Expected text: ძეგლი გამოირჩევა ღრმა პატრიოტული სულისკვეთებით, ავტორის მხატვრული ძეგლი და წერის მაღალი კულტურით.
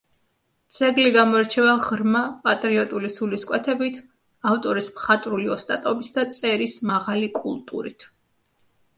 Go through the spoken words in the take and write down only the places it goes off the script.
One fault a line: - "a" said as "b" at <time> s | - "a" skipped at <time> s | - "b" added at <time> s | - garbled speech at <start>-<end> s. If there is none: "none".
- "ძეგლი" said as "ოსტატობით" at 5.6 s